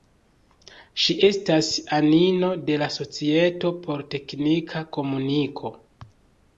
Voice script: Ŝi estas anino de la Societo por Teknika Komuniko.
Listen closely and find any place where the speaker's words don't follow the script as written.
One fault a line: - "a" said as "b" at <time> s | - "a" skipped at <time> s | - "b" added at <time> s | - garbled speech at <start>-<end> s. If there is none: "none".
none